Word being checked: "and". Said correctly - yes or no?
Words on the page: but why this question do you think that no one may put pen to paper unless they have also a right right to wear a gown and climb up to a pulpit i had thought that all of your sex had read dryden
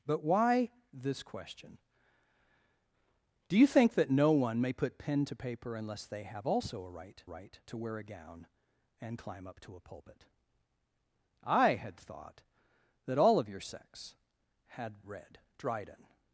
yes